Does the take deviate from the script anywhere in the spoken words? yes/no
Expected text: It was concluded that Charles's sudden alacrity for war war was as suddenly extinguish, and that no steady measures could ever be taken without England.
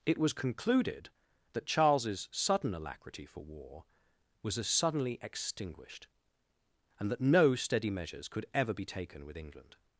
yes